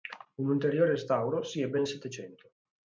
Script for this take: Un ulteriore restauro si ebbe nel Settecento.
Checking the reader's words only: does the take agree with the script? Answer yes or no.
yes